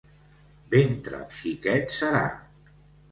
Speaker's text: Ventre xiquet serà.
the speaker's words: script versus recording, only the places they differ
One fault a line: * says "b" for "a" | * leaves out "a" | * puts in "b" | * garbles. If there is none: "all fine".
all fine